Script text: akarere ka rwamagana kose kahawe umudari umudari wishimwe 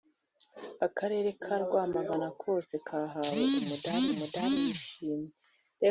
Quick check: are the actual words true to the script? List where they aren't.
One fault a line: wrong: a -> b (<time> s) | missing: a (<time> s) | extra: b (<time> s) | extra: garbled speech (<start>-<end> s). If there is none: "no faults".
no faults